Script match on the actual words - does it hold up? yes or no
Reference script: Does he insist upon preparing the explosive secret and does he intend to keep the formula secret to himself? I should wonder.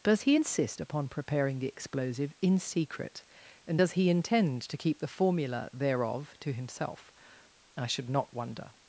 no